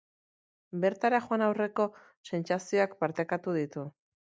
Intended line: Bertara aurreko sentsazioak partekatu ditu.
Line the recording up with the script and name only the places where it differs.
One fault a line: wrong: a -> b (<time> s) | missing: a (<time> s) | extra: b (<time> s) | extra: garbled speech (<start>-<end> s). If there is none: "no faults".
extra: joan (1.2 s)